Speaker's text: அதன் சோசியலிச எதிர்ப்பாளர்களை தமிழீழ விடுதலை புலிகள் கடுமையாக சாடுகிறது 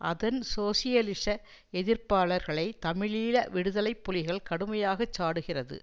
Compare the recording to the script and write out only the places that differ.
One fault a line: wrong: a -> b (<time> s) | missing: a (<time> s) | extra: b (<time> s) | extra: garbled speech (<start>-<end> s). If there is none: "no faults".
no faults